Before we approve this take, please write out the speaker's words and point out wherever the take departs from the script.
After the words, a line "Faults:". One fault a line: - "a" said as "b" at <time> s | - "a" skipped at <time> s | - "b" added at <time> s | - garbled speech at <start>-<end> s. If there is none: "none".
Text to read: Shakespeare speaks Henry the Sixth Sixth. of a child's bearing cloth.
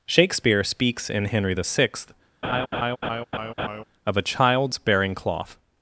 Shakespeare speaks in Henry the Sixth. of a child's bearing cloth.
Faults:
- "in" added at 1.1 s
- "Sixth" skipped at 2.1 s